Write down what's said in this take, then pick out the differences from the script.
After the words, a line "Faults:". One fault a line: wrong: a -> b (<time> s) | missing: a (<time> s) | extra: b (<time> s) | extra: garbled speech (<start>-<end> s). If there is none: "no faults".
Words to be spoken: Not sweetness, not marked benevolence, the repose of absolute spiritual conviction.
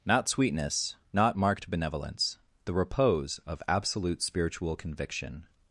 Not sweetness, not marked benevolence, the repose of absolute spiritual conviction.
Faults:
no faults